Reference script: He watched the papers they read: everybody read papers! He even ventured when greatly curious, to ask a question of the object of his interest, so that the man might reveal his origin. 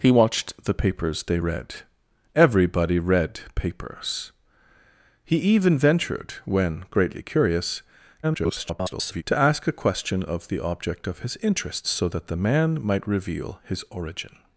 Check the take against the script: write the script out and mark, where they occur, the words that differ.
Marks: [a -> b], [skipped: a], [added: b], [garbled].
He watched the papers they read: everybody read papers! He even ventured when greatly curious, [garbled] to ask a question of the object of his interest, so that the man might reveal his origin.